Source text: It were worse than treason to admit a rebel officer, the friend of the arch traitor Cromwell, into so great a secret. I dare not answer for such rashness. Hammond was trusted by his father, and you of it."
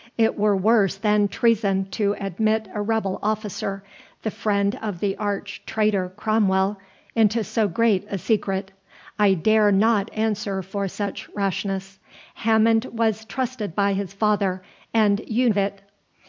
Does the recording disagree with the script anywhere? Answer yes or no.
no